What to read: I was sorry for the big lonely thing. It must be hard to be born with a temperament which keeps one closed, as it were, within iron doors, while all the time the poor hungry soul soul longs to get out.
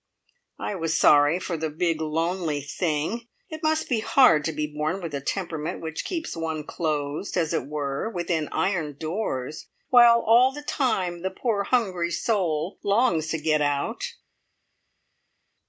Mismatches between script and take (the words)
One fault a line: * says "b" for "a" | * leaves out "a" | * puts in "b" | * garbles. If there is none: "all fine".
* leaves out "soul"